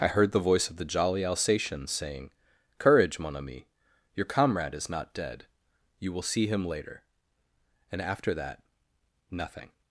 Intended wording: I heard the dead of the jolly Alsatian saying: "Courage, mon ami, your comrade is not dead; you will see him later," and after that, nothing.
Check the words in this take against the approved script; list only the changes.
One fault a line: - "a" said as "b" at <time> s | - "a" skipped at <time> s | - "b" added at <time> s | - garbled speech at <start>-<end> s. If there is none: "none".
- "dead" said as "voice" at 0.4 s